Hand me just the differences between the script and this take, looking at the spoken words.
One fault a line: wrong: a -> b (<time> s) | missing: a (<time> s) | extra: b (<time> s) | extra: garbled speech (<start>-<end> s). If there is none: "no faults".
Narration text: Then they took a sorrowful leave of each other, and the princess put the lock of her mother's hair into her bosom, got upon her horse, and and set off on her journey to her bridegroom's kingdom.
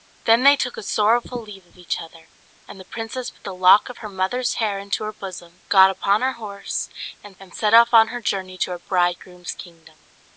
no faults